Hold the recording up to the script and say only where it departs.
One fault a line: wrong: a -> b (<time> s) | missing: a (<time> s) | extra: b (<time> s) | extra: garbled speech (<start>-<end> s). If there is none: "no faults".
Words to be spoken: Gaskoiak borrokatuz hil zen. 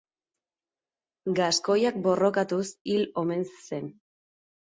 extra: omen (3.2 s)